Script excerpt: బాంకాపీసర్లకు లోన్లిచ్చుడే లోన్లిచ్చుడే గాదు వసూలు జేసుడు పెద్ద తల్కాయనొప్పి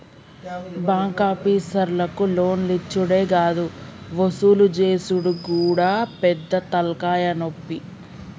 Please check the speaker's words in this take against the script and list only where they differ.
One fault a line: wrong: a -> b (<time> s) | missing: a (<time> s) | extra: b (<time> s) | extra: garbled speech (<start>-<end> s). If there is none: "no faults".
missing: లోన్లిచ్చుడే (3.2 s)
extra: గూడా (5.5 s)